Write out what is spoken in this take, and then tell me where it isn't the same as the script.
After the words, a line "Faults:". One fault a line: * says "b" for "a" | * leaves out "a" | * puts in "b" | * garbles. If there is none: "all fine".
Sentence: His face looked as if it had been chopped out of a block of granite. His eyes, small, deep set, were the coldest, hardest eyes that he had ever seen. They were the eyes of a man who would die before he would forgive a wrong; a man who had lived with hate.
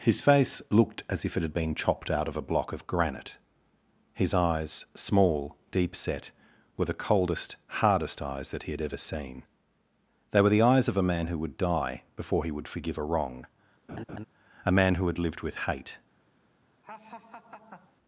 His face looked as if it had been chopped out of a block of granite. His eyes, small, deep set, were the coldest, hardest eyes that he had ever seen. They were the eyes of a man who would die before he would forgive a wrong; a man who had lived with hate.
Faults:
all fine